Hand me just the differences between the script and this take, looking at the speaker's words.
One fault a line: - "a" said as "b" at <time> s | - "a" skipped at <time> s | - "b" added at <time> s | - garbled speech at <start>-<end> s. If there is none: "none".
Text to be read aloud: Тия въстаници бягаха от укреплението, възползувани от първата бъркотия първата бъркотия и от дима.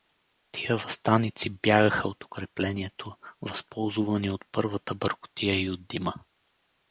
- "първата бъркотия" skipped at 5.6 s